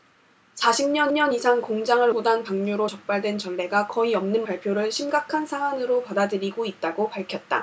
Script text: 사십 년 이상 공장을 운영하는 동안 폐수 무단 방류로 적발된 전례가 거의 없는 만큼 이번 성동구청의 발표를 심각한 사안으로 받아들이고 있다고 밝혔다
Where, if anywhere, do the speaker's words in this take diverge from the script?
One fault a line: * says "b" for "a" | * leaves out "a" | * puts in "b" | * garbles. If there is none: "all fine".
* puts in "년"
* leaves out "운영하는 동안 폐수"
* leaves out "만큼 이번 성동구청의"